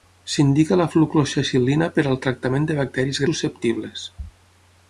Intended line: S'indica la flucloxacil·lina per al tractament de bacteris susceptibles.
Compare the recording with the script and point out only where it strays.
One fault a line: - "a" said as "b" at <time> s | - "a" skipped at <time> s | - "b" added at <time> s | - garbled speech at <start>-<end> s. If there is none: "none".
none